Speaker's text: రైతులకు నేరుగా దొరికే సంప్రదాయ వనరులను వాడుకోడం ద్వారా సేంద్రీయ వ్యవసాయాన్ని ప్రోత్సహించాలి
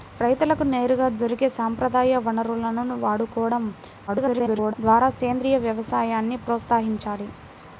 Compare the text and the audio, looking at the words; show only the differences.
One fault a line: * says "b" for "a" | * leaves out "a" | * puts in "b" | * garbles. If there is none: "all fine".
* garbles